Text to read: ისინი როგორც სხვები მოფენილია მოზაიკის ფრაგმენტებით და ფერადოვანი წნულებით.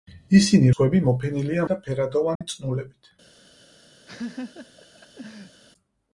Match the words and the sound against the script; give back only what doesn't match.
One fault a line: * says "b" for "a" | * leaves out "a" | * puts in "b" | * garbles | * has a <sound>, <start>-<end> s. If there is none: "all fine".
* leaves out "როგორც"
* leaves out "მოზაიკის ფრაგმენტებით"
* has a dropout, 2.4-2.4 s
* has a laugh, 4.1-5.6 s